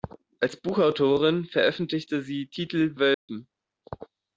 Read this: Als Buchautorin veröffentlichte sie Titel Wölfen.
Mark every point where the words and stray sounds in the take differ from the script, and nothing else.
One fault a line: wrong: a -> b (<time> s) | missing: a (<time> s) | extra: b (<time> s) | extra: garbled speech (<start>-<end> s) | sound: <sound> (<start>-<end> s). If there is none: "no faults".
sound: dropout (3.1-3.3 s)